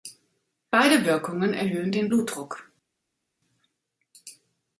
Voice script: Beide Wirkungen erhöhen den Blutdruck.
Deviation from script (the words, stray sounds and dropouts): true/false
false